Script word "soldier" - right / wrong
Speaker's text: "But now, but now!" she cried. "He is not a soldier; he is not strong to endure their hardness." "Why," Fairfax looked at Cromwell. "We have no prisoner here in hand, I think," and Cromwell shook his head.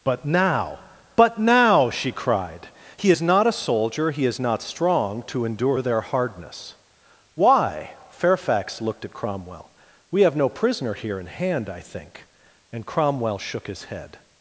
right